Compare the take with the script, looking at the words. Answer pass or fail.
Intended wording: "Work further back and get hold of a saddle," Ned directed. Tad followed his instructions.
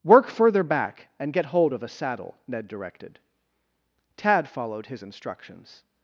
pass